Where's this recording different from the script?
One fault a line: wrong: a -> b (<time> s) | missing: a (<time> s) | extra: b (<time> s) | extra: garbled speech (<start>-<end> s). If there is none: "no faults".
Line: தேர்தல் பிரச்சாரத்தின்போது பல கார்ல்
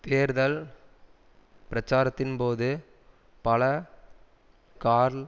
no faults